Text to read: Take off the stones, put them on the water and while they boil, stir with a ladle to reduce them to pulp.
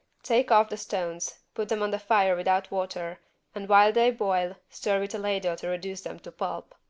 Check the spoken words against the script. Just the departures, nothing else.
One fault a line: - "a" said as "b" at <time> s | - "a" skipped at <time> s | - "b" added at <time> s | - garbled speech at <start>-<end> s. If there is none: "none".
- "fire without" added at 2.0 s